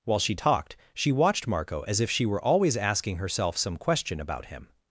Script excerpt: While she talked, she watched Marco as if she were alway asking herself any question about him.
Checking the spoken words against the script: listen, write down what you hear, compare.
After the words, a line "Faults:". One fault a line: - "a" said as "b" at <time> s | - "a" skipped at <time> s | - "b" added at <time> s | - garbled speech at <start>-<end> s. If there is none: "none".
While she talked, she watched Marco as if she were always asking herself some question about him.
Faults:
- "alway" said as "always" at 2.4 s
- "any" said as "some" at 3.5 s